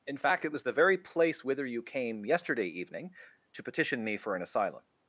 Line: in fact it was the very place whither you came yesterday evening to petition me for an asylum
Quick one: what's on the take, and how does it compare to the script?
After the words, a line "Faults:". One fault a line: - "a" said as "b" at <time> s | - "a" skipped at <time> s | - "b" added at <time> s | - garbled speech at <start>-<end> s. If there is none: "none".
in fact it was the very place whither you came yesterday evening to petition me for an asylum
Faults:
none